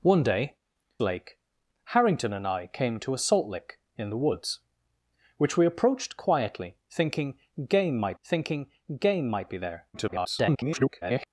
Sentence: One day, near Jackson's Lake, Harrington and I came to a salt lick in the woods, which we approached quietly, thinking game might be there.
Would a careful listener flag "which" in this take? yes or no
no